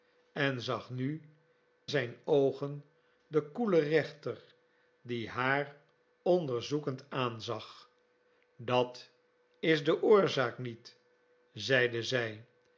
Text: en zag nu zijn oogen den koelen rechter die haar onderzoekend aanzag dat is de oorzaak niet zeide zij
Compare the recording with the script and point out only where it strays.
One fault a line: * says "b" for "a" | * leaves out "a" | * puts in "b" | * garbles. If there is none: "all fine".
all fine